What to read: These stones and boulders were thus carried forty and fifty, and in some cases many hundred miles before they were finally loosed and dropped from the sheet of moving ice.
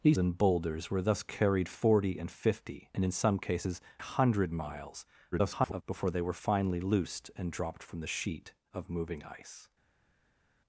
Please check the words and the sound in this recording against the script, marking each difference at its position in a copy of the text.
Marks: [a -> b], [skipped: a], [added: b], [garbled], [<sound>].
These [skipped: stones] and boulders were thus carried forty and fifty, and in some cases [skipped: many] hundred miles [garbled] before they were finally loosed and dropped from the sheet of moving ice.